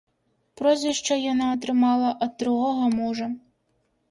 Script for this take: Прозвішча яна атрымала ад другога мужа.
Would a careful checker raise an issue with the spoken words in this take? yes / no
no